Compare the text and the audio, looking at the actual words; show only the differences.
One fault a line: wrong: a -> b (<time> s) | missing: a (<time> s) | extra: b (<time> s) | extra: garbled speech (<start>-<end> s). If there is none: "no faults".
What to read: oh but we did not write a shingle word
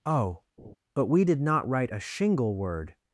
no faults